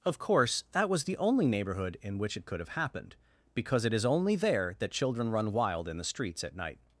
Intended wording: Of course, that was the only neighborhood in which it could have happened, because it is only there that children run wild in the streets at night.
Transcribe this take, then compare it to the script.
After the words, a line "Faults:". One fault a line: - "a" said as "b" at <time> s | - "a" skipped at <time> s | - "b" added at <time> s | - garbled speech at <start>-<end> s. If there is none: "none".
Of course, that was the only neighborhood in which it could have happened, because it is only there that children run wild in the streets at night.
Faults:
none